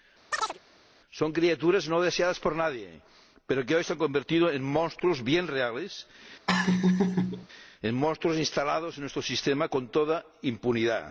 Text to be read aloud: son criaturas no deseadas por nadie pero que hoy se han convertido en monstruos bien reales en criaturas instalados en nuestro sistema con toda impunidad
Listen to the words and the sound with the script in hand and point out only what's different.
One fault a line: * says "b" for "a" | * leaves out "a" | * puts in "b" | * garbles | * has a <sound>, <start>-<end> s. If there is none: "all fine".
* has a chirp, 0.3-0.6 s
* has a laugh, 6.5-7.5 s
* says "monstruos" for "criaturas"